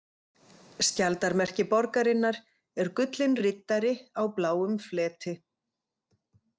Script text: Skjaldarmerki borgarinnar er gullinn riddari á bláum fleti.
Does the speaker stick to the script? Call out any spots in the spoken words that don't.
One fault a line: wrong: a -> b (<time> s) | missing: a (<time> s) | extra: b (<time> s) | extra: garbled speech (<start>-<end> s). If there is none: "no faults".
no faults